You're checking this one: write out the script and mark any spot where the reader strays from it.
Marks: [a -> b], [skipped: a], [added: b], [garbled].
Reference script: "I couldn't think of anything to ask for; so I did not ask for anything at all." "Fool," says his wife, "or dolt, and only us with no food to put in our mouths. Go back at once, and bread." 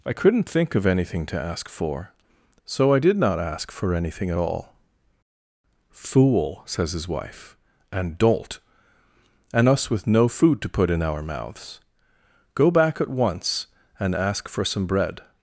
"I couldn't think of anything to ask for; so I did not ask for anything at all." "Fool," says his wife, ["or -> and] dolt, and [skipped: only] us with no food to put in our mouths. Go back at once, and [added: ask for some] bread."